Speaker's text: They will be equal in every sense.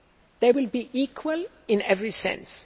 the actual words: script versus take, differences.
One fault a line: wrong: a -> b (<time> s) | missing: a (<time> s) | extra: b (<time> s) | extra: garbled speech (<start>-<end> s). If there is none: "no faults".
no faults